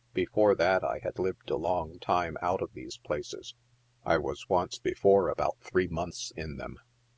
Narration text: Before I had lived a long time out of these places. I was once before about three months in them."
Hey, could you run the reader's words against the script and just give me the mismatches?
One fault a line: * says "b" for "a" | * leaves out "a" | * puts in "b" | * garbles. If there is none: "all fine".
* puts in "that"